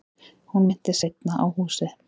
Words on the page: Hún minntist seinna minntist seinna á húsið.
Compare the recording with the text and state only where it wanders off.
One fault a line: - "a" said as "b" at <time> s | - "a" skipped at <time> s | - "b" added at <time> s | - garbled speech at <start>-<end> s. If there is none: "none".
- "minntist seinna" skipped at 1.4 s